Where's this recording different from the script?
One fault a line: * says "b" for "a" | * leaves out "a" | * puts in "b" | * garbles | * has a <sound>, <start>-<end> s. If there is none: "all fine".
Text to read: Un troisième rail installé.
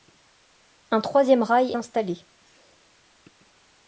all fine